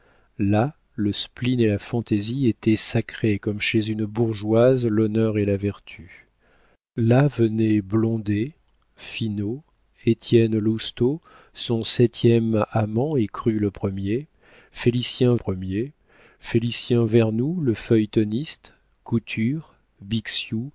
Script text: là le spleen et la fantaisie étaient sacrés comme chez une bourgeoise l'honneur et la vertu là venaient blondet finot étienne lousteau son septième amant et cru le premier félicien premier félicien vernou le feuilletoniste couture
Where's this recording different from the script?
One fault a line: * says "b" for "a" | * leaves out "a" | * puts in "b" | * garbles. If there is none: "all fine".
all fine